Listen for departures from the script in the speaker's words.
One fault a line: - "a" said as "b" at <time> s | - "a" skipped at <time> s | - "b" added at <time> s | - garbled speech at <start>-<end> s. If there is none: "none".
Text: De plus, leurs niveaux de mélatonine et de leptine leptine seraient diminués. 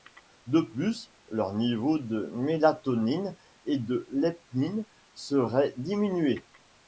- "leptine" skipped at 4.8 s